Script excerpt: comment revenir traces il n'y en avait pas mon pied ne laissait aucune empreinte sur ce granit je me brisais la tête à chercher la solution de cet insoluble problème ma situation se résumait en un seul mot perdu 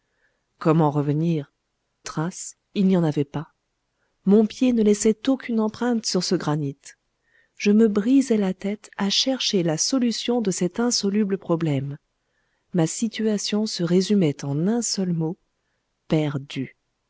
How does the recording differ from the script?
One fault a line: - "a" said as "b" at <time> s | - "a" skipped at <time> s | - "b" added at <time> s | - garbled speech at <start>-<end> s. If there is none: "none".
none